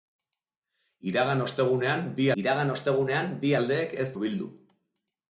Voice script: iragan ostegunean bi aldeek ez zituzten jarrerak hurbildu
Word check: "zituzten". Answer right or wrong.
wrong